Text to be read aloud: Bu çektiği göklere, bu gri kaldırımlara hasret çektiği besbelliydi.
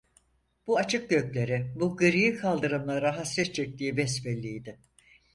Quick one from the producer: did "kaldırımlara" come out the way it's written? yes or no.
yes